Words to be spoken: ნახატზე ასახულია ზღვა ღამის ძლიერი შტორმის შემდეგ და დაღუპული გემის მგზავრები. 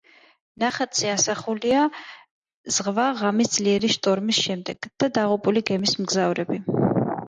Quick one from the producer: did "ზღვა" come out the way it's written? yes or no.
yes